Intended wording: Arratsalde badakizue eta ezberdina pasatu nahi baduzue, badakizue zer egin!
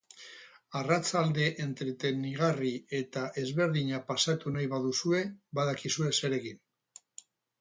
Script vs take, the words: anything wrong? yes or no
yes